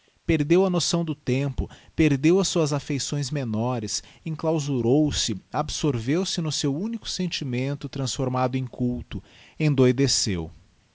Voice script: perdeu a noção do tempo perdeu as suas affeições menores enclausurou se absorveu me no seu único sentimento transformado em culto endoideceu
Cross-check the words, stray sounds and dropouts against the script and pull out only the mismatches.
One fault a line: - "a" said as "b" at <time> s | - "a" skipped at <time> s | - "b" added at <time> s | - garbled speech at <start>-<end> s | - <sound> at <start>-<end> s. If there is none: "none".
- "me" said as "se" at 6.2 s